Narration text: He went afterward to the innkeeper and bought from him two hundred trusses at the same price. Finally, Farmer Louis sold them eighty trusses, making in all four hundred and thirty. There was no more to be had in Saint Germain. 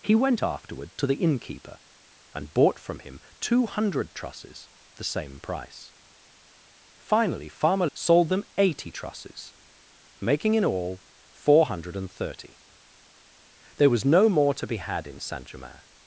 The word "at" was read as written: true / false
false